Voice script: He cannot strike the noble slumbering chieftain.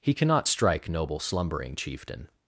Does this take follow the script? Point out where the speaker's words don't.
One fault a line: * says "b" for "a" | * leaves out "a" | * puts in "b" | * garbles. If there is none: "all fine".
* leaves out "the"